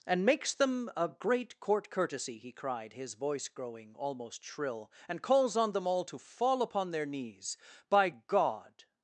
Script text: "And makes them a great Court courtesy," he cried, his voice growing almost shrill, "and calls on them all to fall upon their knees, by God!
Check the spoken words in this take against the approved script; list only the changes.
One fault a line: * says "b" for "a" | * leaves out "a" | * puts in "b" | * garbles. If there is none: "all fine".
all fine